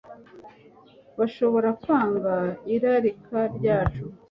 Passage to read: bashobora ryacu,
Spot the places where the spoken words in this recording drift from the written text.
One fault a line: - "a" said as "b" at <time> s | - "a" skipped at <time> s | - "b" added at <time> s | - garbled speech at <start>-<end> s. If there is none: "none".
- "kwanga irarika" added at 1.8 s